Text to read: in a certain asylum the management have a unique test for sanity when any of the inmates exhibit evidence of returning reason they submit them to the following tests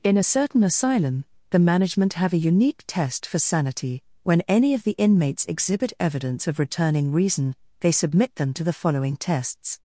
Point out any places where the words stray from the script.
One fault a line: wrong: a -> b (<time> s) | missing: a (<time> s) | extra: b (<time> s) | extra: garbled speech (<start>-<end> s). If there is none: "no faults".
no faults